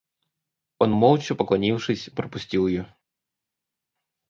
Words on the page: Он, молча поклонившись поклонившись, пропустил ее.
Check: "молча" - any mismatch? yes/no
no